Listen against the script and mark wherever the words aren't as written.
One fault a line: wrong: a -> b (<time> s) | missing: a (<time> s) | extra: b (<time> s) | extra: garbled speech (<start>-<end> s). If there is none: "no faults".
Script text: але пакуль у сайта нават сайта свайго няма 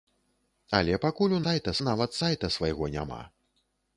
no faults